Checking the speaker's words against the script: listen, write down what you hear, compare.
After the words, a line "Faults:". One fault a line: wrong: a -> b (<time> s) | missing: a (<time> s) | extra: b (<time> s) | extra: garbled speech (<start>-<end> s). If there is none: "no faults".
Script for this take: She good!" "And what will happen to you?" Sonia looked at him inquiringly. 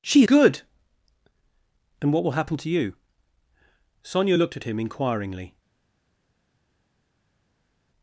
She good!" "And what will happen to you?" Sonia looked at him inquiringly.
Faults:
no faults